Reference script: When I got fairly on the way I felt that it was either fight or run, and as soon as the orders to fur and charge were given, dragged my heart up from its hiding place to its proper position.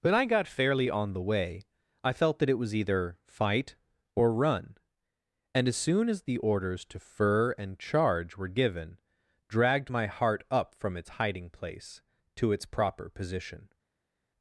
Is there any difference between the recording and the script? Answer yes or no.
no